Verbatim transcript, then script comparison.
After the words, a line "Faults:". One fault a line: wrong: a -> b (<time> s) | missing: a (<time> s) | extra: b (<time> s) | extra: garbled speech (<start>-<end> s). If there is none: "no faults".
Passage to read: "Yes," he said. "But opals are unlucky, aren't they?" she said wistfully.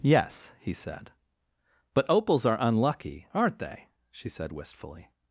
"Yes," he said. "But opals are unlucky, aren't they?" she said wistfully.
Faults:
no faults